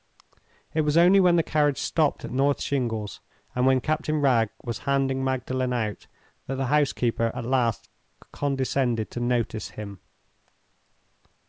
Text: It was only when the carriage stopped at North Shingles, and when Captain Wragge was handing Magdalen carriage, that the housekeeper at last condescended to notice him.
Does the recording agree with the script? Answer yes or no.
no